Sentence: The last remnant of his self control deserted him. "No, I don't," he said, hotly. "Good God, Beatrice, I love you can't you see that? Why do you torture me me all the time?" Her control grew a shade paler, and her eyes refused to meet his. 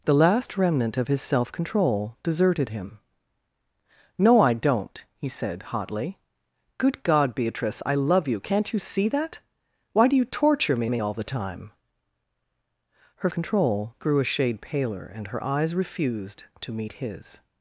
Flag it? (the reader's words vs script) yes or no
no